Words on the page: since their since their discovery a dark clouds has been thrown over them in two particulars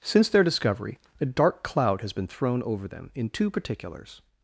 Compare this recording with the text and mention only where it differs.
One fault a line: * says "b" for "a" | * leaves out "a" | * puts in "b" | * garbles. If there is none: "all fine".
* leaves out "since their"
* says "cloud" for "clouds"